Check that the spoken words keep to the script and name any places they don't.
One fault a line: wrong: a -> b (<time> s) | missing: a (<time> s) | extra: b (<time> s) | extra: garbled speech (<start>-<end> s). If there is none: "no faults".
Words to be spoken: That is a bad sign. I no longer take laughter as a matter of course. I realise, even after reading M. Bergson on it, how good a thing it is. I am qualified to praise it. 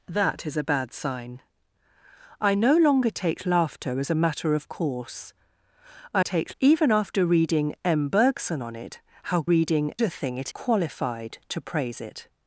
wrong: realise -> take (6.2 s)
wrong: good -> reading (9.4 s)
missing: is I am (10.5 s)